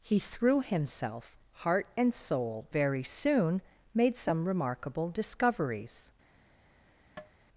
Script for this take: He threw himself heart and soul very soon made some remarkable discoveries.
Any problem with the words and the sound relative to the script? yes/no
yes